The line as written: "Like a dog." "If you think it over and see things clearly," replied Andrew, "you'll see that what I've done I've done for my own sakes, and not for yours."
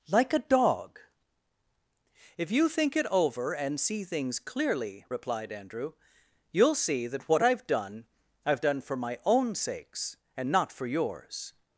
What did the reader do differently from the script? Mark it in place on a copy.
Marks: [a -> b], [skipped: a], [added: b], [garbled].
"Like a dog." "If you think it over and see things clearly," replied Andrew, "you'll see that what I've done I've done for my own sakes, and not for yours."